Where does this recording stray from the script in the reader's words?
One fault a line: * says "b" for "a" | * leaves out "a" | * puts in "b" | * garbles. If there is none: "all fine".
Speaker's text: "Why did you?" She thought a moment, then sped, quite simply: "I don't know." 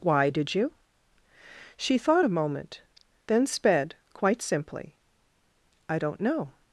all fine